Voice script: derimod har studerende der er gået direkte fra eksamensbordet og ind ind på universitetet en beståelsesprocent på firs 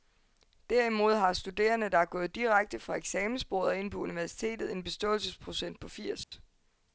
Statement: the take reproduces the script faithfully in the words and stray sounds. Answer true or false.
false